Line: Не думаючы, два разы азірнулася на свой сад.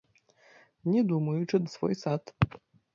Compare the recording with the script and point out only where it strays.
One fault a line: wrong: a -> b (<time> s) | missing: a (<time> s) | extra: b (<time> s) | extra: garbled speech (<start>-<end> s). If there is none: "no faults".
missing: два разы азірнулася (1.6 s)